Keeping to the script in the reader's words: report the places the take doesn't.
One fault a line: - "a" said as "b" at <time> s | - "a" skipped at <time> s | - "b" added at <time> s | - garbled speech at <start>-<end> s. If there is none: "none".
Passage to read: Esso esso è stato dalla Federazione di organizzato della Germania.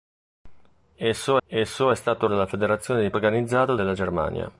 none